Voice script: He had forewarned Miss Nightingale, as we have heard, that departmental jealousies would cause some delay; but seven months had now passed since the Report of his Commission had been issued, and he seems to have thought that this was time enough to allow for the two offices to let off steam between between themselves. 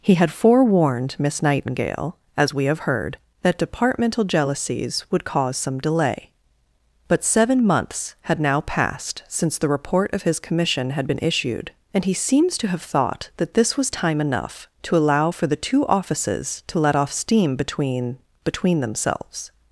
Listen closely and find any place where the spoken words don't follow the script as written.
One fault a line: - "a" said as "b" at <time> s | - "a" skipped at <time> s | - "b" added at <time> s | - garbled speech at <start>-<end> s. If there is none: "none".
none